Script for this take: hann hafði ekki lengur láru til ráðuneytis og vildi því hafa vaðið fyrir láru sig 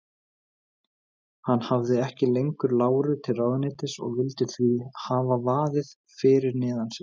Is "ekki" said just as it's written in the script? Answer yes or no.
yes